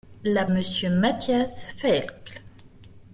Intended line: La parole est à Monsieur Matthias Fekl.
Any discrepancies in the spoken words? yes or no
yes